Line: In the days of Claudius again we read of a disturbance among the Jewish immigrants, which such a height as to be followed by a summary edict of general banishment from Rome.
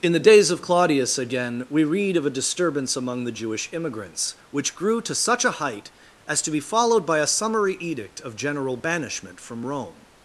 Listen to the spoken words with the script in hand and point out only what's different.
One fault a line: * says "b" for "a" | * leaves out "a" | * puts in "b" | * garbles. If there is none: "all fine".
* puts in "grew to"